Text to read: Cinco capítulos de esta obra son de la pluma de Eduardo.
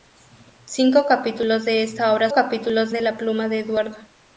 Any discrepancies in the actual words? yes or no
yes